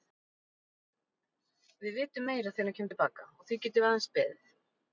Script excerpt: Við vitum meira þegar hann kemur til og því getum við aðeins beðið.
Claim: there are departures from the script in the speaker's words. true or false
true